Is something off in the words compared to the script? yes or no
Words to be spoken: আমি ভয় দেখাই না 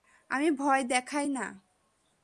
no